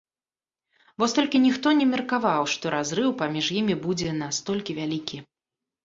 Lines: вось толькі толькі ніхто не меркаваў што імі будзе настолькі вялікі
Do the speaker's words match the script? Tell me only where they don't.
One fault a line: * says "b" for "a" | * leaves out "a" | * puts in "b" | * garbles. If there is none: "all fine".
* leaves out "толькі"
* puts in "разрыў паміж"